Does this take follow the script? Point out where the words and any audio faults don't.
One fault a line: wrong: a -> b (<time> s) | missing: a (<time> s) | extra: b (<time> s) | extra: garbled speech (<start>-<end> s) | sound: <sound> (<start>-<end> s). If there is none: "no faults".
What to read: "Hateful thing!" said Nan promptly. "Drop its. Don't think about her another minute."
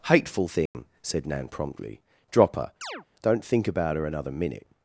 sound: dropout (0.7-0.7 s)
wrong: its -> her (2.5 s)
sound: chirp (2.8-3.1 s)